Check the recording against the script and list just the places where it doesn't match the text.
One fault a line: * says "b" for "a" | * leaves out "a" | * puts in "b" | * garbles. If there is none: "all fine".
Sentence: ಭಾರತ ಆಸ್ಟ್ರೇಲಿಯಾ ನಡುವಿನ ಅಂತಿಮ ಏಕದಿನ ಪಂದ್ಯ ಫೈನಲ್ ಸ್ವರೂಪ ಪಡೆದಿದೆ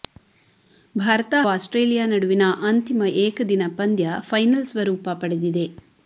all fine